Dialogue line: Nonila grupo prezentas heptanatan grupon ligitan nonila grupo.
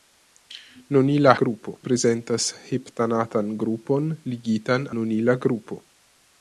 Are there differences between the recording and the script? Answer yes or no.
no